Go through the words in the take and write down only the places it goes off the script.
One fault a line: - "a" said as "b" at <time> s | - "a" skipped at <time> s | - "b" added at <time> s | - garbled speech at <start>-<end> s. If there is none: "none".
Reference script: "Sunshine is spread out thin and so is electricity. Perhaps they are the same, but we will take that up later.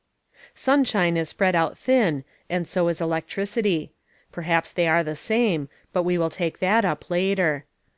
none